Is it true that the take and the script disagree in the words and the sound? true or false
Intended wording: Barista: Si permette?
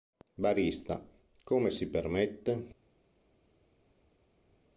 true